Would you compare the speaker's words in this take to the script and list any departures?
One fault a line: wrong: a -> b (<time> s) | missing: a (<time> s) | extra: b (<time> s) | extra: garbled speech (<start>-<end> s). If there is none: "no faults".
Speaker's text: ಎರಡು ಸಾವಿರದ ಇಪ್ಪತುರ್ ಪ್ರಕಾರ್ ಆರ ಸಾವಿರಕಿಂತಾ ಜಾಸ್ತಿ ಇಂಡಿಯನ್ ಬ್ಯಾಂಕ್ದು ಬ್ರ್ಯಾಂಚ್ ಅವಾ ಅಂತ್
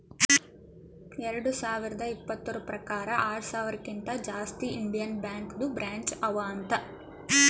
no faults